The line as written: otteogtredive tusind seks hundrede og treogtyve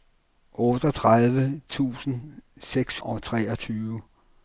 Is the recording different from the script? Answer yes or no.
yes